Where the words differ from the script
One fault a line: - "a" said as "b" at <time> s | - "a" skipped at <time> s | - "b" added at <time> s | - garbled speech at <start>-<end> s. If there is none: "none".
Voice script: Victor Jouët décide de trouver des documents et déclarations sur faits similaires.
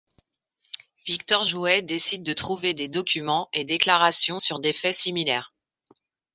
- "des" added at 4.6 s